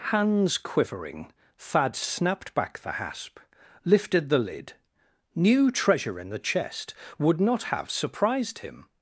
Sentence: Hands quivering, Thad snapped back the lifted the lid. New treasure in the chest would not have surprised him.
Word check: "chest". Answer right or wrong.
right